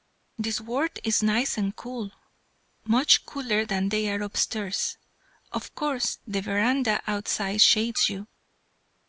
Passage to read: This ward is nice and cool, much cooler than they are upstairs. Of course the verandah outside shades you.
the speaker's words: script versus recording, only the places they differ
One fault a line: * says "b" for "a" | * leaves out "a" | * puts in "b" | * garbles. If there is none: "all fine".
all fine